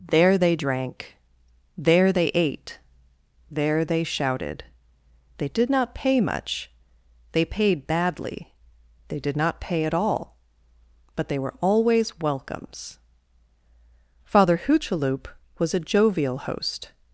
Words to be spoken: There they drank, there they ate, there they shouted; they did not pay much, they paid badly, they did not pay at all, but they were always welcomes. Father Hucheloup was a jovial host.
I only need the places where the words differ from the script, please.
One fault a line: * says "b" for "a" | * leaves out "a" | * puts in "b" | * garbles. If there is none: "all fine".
all fine